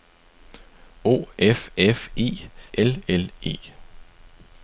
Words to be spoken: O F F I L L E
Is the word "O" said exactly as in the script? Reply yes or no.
yes